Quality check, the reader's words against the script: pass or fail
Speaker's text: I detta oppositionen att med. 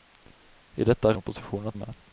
pass